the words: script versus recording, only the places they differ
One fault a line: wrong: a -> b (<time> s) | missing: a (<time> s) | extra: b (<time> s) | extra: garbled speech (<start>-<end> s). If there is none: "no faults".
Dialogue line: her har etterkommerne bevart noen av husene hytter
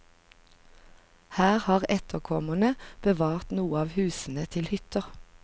extra: til (4.6 s)